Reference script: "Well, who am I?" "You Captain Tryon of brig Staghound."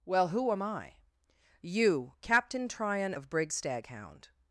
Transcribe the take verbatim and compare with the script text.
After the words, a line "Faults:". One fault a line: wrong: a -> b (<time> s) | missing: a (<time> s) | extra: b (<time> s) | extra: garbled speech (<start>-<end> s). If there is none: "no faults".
"Well, who am I?" "You Captain Tryon of brig Staghound."
Faults:
no faults